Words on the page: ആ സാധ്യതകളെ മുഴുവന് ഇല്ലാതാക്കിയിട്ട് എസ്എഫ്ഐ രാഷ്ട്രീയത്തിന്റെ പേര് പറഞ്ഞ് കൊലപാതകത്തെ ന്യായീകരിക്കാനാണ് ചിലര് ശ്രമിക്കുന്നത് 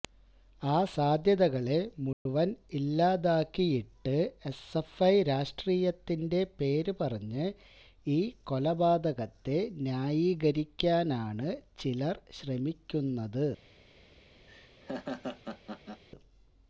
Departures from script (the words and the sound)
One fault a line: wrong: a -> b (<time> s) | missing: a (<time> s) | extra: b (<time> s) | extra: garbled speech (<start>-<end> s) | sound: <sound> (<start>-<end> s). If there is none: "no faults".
sound: dropout (2.1-2.3 s)
extra: ഈ (8.1 s)
sound: laugh (14.5-16.0 s)